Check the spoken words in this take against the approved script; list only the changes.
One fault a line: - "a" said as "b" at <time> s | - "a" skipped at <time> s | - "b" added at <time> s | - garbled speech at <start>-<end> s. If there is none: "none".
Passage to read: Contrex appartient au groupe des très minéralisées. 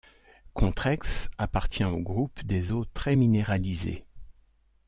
- "eaux" added at 2.7 s